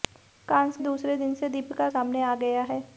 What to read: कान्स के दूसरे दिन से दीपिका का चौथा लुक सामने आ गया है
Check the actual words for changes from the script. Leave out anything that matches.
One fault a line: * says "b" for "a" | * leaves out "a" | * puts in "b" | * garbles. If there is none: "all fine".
* leaves out "के"
* leaves out "का चौथा लुक"